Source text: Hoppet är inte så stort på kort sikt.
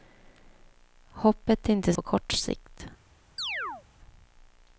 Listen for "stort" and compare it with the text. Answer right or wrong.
wrong